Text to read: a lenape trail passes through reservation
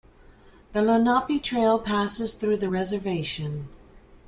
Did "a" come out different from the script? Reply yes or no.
yes